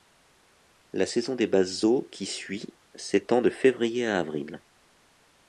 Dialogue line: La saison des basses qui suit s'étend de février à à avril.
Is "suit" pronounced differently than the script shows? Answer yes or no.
no